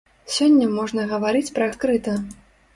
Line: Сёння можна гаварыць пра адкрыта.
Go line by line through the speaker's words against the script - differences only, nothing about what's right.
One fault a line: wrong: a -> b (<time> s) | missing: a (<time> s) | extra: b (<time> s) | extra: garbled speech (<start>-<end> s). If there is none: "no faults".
no faults